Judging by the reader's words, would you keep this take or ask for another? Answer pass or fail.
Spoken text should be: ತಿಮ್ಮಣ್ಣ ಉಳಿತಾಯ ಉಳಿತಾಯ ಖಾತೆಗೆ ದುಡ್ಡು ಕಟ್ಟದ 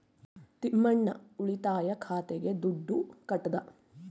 fail